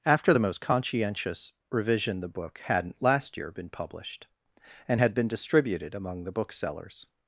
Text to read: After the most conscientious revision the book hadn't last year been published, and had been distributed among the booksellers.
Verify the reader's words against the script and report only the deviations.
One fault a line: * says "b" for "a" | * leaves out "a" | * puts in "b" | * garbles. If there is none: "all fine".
all fine